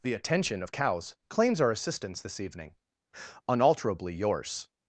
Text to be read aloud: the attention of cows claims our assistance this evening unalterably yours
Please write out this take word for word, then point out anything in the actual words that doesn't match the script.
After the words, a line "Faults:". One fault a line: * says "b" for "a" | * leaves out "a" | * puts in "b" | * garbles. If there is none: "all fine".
the attention of cows claims our assistance this evening unalterably yours
Faults:
all fine